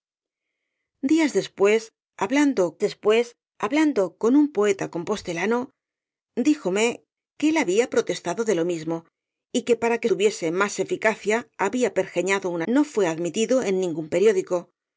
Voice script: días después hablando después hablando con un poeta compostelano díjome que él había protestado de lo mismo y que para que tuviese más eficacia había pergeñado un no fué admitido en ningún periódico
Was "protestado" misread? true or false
false